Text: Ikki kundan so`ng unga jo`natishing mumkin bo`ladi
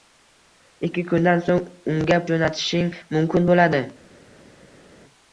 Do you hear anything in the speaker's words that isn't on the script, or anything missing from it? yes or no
no